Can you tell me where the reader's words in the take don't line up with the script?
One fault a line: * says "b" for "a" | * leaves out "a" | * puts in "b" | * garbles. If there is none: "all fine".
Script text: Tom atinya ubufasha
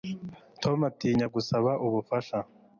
* puts in "gusaba"